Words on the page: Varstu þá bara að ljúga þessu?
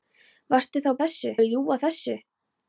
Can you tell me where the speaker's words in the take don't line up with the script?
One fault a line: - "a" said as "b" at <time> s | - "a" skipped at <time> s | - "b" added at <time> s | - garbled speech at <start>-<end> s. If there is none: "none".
- "bara" said as "þessu" at 1.0 s